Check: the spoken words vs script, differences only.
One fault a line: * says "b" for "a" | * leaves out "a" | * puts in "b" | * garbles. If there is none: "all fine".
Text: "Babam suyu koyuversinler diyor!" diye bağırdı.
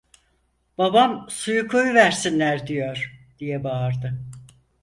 all fine